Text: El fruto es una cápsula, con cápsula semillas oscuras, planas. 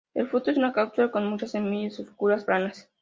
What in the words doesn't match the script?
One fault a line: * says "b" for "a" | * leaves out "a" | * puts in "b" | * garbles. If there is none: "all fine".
* says "muchas" for "cápsula"